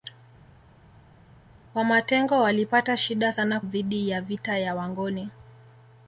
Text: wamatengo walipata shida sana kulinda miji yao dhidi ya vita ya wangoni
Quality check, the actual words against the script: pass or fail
fail